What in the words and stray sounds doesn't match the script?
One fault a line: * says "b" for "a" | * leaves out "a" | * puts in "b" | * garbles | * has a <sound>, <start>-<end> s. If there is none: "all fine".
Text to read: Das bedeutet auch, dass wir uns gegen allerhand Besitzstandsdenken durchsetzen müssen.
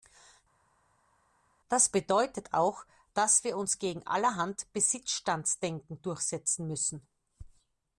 all fine